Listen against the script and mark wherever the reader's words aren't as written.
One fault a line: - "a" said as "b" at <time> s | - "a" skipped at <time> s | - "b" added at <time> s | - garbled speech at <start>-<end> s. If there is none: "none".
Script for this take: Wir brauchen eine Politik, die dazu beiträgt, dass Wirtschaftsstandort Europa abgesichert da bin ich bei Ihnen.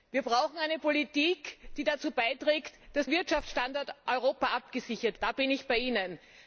none